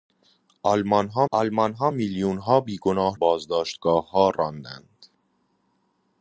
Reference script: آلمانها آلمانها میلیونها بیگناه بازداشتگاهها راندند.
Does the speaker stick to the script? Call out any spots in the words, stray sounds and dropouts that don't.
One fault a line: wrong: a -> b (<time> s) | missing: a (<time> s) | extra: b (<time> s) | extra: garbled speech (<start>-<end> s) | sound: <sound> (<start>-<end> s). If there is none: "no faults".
no faults